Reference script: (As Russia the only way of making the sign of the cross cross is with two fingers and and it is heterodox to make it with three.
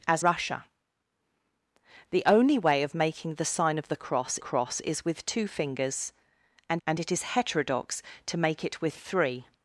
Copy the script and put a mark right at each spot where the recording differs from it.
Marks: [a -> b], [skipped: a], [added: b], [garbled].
(As Russia the only way of making the sign of the cross cross is with two fingers and and it is heterodox to make it with three.